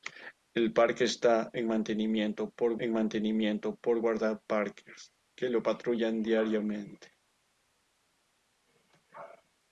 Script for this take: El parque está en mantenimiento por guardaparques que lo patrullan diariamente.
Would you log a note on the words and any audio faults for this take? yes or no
yes